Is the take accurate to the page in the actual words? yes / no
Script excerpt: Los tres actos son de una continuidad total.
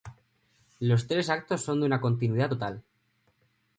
yes